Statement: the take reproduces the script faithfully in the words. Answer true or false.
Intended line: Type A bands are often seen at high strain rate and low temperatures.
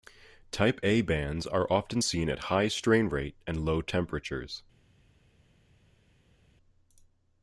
true